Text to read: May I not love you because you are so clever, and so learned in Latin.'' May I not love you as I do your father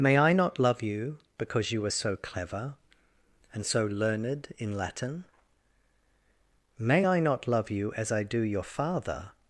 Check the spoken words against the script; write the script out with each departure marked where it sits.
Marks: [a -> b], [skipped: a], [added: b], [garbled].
May I not love you because you are so clever, and so learned in Latin.'' May I not love you as I do your father